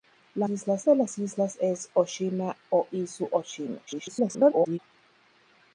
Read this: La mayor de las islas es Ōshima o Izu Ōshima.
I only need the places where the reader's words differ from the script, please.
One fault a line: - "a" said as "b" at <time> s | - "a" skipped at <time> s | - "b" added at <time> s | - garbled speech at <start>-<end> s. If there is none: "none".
- "mayor" said as "islas" at 0.5 s
- garbled speech at 3.9-4.8 s